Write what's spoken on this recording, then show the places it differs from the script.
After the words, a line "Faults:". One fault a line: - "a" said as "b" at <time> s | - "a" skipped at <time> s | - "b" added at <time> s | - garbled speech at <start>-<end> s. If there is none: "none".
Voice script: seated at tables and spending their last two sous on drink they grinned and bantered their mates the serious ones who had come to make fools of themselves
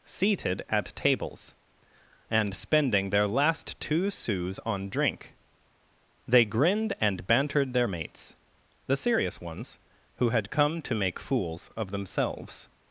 seated at tables and spending their last two sous on drink they grinned and bantered their mates the serious ones who had come to make fools of themselves
Faults:
none